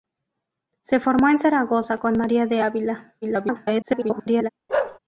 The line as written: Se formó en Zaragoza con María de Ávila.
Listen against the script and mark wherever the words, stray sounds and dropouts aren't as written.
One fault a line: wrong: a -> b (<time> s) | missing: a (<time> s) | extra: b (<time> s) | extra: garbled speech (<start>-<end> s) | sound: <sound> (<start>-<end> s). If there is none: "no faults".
extra: garbled speech (3.2-4.5 s)
sound: bark (4.7-5.0 s)